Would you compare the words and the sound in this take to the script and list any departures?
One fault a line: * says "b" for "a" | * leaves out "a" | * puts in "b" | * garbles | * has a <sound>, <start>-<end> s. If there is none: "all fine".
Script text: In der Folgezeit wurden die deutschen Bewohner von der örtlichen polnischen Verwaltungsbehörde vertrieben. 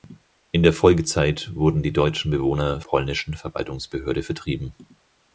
* leaves out "von der örtlichen"